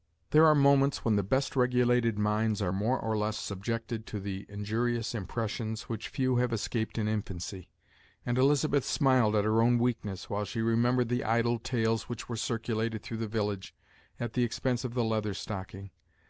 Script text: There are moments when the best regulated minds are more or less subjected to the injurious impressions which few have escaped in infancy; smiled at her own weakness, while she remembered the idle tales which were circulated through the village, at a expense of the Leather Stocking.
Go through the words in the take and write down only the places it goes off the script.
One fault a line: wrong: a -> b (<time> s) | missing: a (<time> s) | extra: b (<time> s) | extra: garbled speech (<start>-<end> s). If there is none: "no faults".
extra: and Elizabeth (8.2 s)
wrong: a -> the (14.3 s)